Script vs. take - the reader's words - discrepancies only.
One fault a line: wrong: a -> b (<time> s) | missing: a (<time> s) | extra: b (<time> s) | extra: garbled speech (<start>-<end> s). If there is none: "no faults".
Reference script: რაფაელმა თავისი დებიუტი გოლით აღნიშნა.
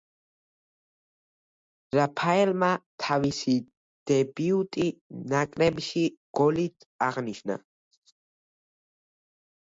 extra: ნაკრებში (5.3 s)